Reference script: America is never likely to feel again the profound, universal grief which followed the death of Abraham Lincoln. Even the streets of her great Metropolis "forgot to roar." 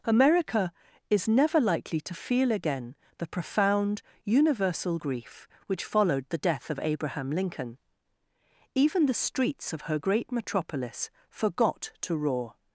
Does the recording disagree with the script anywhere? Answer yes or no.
no